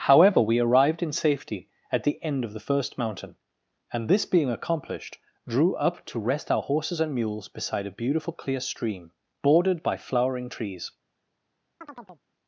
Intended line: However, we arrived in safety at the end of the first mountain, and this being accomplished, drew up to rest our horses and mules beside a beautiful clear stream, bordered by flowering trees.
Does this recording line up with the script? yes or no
yes